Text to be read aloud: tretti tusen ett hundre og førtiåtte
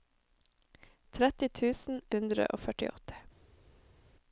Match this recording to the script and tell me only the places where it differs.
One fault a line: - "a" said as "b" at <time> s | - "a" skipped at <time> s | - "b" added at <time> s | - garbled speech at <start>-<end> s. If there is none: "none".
- "ett" skipped at 2.0 s